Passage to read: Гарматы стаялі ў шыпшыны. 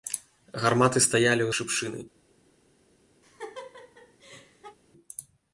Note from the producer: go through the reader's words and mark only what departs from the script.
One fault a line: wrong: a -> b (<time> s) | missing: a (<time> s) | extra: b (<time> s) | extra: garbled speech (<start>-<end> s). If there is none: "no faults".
no faults